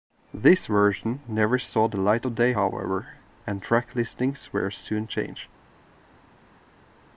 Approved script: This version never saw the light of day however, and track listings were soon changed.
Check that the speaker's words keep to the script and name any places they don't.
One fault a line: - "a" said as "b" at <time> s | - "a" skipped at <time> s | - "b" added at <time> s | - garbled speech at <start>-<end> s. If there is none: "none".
none